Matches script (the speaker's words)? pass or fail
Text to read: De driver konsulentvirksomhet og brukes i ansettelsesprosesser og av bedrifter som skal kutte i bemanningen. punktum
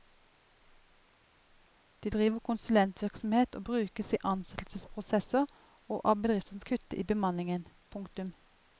fail